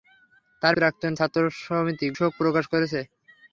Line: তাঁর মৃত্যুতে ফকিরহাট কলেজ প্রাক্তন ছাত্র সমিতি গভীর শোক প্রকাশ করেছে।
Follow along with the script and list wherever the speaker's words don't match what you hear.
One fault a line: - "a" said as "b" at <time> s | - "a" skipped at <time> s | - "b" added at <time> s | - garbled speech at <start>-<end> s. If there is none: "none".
- "মৃত্যুতে ফকিরহাট কলেজ" skipped at 0.7 s
- "গভীর" skipped at 2.1 s